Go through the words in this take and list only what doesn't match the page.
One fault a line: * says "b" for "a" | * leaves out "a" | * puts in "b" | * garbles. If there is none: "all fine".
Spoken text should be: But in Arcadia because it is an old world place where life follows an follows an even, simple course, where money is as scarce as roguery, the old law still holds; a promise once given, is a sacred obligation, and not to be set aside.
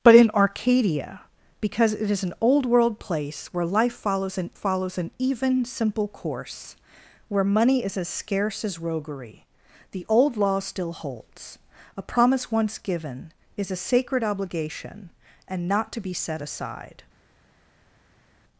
all fine